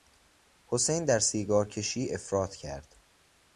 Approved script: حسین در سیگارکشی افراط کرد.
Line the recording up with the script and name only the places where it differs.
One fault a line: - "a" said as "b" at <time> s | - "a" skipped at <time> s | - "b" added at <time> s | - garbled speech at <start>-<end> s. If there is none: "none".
none